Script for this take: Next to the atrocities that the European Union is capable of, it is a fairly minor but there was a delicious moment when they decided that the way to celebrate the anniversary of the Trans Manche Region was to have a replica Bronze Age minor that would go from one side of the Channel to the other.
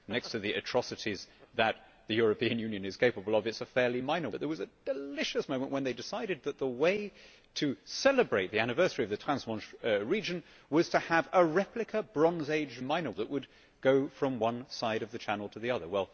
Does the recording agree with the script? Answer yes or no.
yes